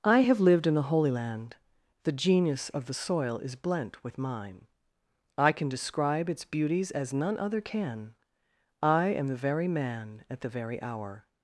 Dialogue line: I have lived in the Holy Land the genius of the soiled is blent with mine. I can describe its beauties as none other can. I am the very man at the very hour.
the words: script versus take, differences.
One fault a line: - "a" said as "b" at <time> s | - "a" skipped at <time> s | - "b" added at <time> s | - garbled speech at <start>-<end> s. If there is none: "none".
- "soiled" said as "soil" at 2.9 s